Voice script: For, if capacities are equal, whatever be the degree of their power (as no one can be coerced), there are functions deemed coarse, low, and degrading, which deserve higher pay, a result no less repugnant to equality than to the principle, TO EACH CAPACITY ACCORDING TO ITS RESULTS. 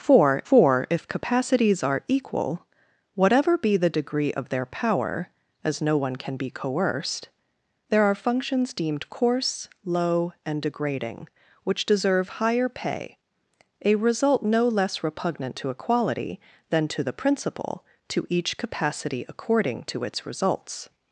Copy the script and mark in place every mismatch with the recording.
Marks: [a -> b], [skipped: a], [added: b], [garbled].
For, [added: for] if capacities are equal, whatever be the degree of their power (as no one can be coerced), there are functions deemed coarse, low, and degrading, which deserve higher pay, a result no less repugnant to equality than to the principle, TO EACH CAPACITY ACCORDING TO ITS RESULTS.